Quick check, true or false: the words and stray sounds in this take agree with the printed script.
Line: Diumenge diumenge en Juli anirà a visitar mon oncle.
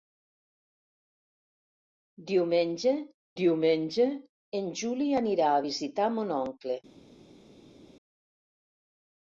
true